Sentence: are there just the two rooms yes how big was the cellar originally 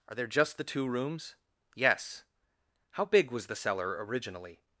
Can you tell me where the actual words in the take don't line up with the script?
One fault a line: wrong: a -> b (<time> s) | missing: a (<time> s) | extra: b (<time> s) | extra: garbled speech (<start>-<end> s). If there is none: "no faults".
no faults